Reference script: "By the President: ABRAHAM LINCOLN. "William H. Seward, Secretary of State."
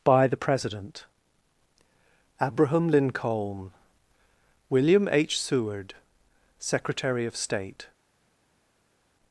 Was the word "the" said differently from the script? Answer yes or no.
no